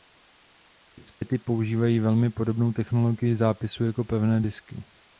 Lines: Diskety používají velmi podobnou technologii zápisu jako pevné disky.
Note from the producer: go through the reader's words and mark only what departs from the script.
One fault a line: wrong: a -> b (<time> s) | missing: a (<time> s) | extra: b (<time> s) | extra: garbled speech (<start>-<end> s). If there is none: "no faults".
no faults